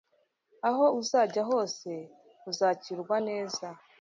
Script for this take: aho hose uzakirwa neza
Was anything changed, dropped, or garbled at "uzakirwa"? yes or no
no